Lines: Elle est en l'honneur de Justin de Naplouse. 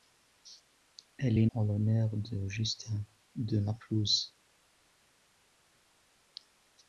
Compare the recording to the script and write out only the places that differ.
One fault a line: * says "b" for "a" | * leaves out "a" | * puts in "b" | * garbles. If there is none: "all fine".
all fine